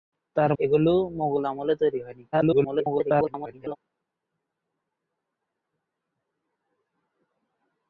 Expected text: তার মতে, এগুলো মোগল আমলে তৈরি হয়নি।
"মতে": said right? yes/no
no